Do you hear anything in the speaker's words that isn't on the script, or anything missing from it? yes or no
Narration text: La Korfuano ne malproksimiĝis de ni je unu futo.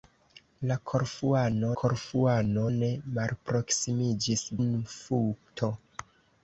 yes